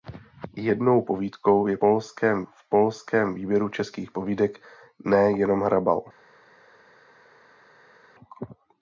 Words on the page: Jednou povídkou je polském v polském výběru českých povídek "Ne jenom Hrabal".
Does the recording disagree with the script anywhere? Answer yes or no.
no